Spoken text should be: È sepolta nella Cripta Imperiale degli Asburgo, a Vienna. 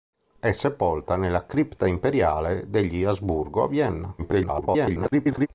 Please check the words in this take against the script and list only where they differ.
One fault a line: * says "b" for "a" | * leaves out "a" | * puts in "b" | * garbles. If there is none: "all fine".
* garbles